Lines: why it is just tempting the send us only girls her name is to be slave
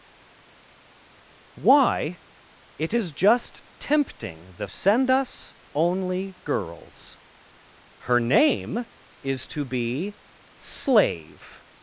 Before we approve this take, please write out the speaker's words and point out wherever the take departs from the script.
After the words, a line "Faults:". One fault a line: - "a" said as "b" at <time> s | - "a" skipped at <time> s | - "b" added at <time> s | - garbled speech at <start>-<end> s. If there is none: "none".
why it is just tempting the send us only girls her name is to be slave
Faults:
none